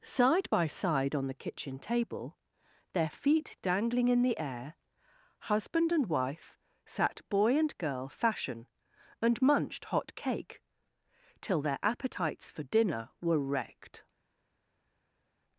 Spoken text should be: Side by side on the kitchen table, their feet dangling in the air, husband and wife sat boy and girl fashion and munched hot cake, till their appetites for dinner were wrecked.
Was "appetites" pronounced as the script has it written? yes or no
yes